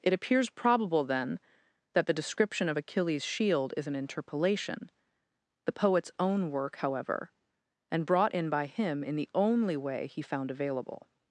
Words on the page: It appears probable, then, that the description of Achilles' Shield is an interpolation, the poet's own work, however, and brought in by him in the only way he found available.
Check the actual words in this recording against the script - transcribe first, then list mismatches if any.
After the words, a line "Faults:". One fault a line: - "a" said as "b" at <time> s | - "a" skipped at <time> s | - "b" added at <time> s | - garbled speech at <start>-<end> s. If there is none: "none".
It appears probable, then, that the description of Achilles' Shield is an interpolation, the poet's own work, however, and brought in by him in the only way he found available.
Faults:
none